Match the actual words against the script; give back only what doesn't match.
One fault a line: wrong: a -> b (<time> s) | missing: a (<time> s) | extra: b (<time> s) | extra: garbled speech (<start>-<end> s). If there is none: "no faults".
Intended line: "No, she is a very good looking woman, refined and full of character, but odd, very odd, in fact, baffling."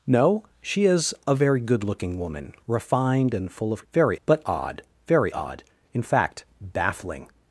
wrong: character -> very (3.9 s)